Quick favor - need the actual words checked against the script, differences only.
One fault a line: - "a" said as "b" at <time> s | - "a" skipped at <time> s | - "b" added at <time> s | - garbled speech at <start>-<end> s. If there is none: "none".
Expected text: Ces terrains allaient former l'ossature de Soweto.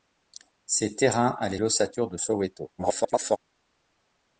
- "former" skipped at 1.6 s
- garbled speech at 2.8-3.4 s